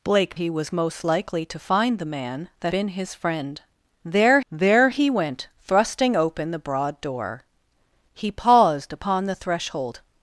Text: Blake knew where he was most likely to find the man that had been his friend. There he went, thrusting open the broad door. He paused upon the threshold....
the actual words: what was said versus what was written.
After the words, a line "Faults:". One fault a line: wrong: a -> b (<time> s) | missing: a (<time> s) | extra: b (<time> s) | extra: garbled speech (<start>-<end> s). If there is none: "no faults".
Blake he was most likely to find the man that been his friend. There there he went, thrusting open the broad door. He paused upon the threshold....
Faults:
missing: knew where (0.3 s)
missing: had (2.7 s)
extra: there (4.5 s)